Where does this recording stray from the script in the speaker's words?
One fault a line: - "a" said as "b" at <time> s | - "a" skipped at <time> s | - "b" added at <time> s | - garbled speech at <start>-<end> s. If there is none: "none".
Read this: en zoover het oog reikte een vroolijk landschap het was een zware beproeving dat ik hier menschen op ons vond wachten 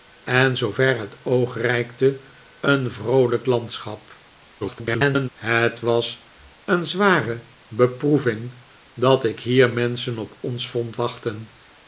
- garbled speech at 4.6-5.3 s